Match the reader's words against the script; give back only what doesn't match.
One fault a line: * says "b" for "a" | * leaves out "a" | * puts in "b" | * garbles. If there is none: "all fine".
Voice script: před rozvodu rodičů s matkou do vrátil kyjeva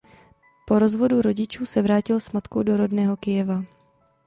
* says "po" for "před"
* puts in "se vrátil"
* says "rodného" for "vrátil"